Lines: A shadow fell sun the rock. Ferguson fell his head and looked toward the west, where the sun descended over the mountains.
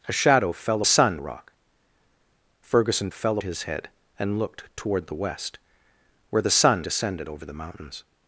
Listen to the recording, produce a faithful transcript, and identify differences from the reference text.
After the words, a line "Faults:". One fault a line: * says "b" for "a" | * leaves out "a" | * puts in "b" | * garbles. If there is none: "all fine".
A shadow fell sun the rock. Ferguson fell his head and looked toward the west, where the sun descended over the mountains.
Faults:
all fine